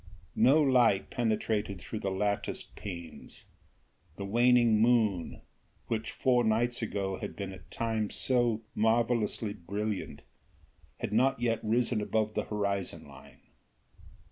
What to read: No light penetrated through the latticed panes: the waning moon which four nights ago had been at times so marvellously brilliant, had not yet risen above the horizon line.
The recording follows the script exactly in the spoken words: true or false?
true